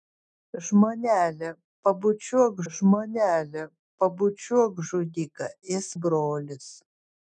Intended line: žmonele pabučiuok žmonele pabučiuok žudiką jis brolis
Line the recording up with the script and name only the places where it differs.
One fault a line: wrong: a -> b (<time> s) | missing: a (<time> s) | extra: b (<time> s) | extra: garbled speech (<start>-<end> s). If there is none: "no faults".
no faults